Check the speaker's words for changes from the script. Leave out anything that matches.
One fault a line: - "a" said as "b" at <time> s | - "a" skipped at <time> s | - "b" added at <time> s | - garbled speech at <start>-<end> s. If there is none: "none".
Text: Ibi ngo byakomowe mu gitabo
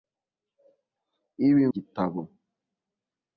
- "ngo byakomowe mu" skipped at 1.6 s